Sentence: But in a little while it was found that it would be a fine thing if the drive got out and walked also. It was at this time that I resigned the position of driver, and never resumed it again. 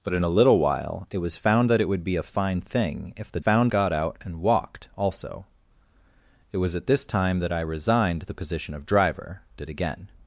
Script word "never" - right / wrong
wrong